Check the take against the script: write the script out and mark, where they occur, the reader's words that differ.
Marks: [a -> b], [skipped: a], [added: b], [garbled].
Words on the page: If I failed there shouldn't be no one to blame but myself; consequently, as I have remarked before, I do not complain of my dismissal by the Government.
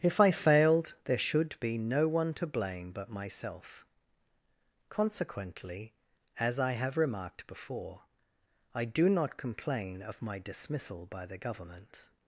If I failed there [shouldn't -> should] be no one to blame but myself; consequently, as I have remarked before, I do not complain of my dismissal by the Government.